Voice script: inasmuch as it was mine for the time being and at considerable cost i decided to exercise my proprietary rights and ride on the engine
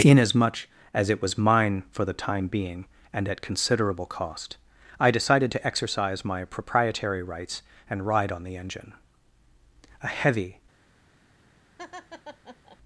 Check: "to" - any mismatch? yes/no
no